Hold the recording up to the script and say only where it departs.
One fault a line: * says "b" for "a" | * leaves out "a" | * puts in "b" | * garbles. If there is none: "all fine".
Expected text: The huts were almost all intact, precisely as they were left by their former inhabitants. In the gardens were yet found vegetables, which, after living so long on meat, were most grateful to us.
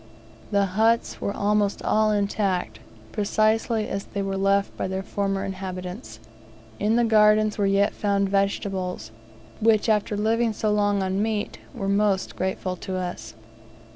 all fine